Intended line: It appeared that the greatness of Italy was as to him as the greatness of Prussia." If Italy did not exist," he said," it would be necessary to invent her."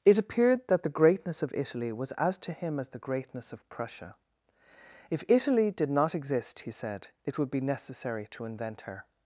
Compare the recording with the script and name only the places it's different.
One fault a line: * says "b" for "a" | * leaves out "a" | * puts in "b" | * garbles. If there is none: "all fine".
all fine